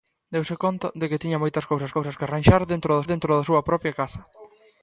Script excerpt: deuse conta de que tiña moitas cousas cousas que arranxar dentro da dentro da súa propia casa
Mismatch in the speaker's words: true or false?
false